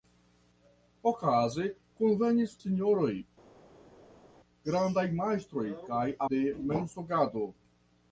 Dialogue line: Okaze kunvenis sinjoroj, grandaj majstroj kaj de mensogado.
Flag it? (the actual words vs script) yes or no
no